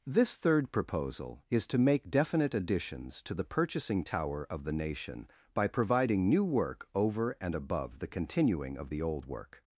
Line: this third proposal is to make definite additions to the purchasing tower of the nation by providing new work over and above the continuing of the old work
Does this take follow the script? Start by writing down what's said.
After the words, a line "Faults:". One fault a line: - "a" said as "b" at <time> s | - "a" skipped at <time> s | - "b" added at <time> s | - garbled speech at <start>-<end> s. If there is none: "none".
this third proposal is to make definite additions to the purchasing tower of the nation by providing new work over and above the continuing of the old work
Faults:
none